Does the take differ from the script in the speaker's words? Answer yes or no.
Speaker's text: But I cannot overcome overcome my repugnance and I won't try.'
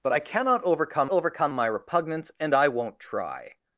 no